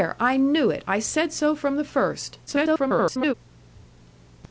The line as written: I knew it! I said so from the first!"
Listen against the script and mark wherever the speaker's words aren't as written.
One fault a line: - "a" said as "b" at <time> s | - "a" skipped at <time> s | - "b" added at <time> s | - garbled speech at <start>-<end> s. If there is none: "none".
- garbled speech at 2.5-3.3 s